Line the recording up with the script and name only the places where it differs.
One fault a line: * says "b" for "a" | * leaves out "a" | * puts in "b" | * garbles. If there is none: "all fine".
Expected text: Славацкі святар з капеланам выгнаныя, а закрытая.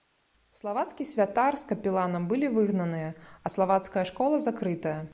* puts in "былі"
* puts in "славацкая школа"